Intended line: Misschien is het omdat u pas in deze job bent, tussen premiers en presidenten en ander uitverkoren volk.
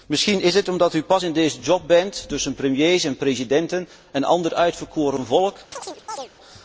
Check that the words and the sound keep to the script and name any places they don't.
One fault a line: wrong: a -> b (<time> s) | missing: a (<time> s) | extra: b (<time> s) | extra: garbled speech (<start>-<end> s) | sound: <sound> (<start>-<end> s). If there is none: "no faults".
sound: chirp (5.7-6.3 s)